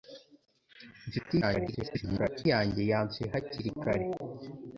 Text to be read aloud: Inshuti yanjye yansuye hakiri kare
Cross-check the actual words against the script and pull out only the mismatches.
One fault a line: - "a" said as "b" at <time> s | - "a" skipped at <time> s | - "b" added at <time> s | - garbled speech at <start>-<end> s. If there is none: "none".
- garbled speech at 1.4-2.5 s